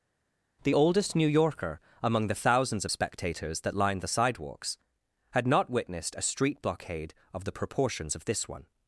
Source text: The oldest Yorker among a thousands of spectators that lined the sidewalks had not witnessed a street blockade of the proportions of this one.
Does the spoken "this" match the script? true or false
true